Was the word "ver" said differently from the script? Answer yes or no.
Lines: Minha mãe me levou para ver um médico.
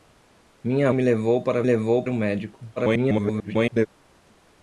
yes